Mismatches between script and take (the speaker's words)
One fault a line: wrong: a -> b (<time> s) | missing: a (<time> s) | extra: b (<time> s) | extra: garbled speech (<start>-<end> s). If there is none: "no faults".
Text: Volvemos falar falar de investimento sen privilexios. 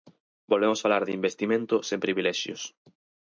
missing: falar (1.0 s)